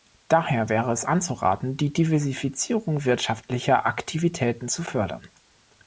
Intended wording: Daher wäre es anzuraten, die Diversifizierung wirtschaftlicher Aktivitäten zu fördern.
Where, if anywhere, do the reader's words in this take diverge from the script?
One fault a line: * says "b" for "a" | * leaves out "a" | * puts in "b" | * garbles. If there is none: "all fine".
all fine